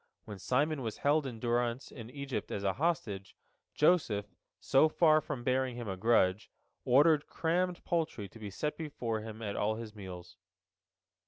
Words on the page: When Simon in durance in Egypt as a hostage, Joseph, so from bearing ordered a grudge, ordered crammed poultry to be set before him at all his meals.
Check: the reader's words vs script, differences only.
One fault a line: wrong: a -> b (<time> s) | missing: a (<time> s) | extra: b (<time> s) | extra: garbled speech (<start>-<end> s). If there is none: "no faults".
extra: was held (0.8 s)
extra: far (4.9 s)
wrong: ordered -> him (5.8 s)